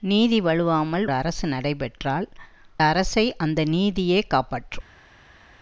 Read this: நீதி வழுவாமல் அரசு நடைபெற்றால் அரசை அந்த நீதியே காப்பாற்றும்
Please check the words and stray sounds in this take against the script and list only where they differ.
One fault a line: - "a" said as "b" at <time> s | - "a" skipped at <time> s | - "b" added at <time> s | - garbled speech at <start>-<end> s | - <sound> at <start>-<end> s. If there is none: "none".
none